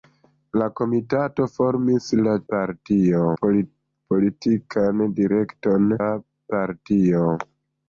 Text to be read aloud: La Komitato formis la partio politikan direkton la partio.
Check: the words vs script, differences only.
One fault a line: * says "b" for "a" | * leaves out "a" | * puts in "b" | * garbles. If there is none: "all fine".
all fine